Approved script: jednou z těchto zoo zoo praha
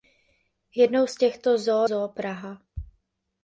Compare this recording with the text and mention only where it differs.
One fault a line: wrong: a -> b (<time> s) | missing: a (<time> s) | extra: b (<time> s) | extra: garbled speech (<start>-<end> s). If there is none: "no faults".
no faults